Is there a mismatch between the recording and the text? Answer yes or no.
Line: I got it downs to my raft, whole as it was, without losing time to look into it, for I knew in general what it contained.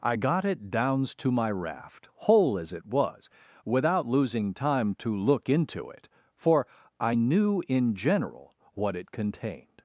no